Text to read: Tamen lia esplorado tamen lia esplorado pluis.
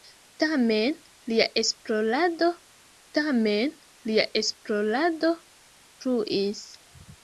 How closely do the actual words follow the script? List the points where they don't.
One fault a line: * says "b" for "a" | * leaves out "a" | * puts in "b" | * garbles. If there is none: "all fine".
all fine